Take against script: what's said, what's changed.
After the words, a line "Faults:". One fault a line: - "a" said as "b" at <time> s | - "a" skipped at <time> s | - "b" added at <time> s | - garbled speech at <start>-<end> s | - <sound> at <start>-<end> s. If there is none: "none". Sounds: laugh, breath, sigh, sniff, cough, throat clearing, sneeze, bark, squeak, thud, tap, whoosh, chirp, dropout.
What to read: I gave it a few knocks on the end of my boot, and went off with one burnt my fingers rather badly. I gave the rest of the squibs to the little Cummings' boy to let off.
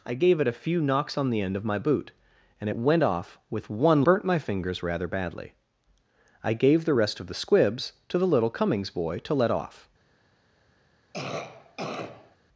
I gave it a few knocks on the end of my boot, and went off with one burnt my fingers rather badly. I gave the rest of the squibs to the little Cummings' boy to let off.
Faults:
- cough at 11.1-12.4 s